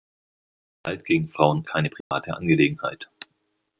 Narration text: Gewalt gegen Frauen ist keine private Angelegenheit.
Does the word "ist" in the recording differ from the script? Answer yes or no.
yes